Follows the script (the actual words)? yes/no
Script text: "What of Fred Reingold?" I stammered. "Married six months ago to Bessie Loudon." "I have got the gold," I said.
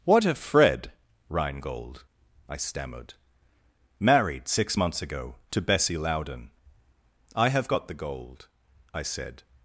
yes